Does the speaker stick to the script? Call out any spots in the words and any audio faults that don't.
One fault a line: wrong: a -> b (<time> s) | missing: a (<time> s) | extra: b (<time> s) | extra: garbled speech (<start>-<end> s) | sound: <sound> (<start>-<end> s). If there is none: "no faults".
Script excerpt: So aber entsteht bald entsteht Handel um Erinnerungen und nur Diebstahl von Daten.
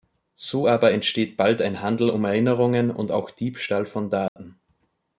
wrong: entsteht -> ein (1.6 s)
wrong: nur -> auch (3.1 s)
sound: dropout (4.3-4.4 s)